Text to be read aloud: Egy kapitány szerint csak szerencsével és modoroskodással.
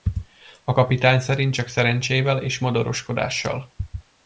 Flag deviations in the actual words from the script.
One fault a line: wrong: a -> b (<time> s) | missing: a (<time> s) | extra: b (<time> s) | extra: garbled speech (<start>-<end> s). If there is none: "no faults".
wrong: Egy -> A (0.6 s)